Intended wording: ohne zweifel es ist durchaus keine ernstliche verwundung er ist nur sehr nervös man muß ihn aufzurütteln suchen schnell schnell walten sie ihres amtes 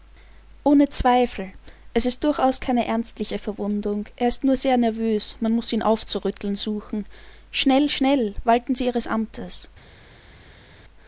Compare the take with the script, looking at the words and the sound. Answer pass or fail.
pass